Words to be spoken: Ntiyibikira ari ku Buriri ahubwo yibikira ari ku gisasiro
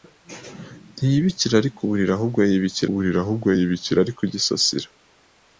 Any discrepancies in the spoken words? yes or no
yes